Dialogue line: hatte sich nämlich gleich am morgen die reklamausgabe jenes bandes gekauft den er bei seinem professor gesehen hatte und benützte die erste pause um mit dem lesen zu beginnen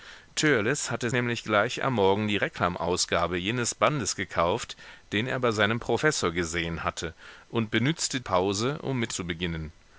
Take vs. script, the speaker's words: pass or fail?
fail